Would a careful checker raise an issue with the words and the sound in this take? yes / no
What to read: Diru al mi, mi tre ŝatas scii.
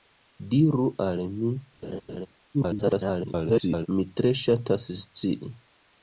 yes